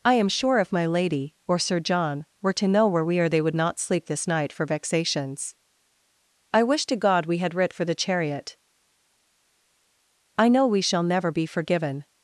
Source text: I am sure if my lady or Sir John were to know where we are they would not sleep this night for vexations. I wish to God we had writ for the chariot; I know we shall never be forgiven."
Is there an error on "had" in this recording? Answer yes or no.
no